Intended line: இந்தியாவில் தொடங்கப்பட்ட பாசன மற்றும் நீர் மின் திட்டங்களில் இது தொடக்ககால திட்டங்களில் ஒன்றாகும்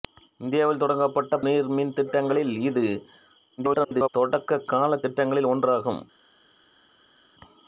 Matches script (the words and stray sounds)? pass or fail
fail